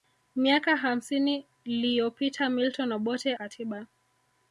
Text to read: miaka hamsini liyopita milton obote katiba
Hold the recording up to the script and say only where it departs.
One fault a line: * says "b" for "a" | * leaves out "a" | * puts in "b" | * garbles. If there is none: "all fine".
all fine